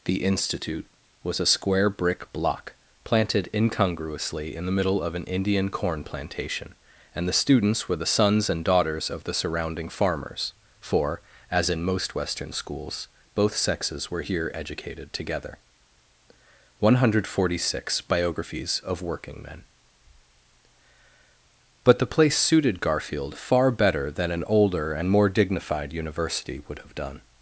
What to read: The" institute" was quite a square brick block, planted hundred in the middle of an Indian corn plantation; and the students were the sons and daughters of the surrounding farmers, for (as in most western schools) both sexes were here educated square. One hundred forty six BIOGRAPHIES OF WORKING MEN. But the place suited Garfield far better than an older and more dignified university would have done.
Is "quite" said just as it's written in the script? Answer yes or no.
no